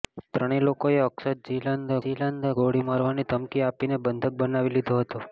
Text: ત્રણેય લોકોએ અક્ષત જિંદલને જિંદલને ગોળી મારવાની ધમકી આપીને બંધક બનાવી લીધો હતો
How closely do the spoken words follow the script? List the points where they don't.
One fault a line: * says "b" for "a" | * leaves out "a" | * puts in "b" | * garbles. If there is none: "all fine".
all fine